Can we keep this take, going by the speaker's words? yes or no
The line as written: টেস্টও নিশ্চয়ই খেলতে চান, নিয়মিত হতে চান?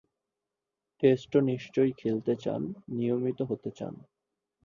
yes